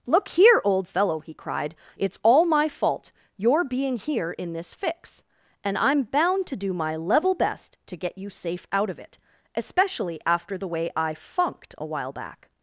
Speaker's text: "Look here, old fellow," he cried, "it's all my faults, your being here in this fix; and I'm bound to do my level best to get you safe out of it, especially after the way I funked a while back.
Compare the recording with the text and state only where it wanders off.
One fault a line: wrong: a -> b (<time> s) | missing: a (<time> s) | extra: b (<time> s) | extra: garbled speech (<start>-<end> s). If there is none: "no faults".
wrong: faults -> fault (2.7 s)